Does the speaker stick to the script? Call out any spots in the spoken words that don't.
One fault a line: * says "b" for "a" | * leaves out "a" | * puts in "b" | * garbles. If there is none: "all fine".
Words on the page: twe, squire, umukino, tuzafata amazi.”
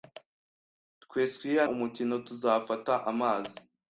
all fine